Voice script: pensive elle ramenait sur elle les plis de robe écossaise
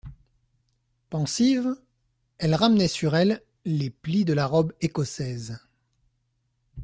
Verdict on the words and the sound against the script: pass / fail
fail